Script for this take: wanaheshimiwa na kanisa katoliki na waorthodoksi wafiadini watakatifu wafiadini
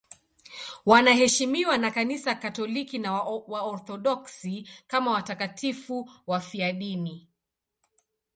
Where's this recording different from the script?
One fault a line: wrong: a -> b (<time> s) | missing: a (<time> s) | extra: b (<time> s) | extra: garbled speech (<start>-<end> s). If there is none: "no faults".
wrong: wafiadini -> kama (4.9 s)